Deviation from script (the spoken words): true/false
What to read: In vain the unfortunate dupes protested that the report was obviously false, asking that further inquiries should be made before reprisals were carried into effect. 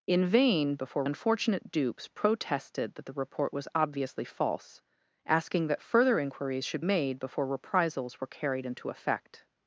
true